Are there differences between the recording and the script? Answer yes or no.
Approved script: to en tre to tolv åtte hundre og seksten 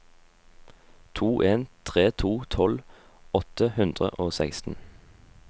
no